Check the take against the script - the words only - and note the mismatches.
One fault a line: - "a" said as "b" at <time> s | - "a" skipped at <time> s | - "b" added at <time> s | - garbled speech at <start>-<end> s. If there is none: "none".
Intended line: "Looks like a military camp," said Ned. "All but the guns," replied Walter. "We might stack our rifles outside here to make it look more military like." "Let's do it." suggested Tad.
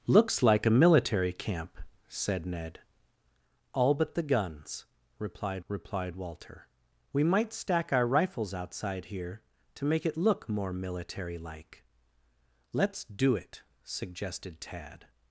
- "replied" added at 5.7 s